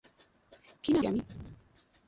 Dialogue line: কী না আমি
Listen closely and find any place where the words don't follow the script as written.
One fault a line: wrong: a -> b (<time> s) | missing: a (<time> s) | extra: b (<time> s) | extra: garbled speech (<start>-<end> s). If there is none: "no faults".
no faults